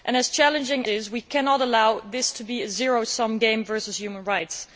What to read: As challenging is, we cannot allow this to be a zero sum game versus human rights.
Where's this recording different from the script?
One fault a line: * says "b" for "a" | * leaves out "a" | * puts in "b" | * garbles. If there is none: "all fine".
all fine